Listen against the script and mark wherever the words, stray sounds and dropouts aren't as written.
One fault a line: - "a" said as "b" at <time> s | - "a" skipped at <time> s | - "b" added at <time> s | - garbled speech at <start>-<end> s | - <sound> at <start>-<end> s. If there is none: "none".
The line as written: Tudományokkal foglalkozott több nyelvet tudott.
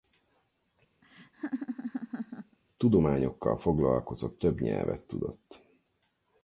- laugh at 1.0-2.6 s